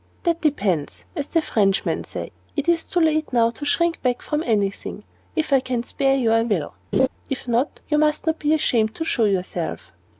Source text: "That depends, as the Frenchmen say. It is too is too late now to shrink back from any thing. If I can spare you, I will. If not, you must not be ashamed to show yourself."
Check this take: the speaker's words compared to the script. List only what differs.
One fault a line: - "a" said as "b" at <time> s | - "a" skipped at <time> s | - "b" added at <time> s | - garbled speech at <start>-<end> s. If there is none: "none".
- "is too" skipped at 3.0 s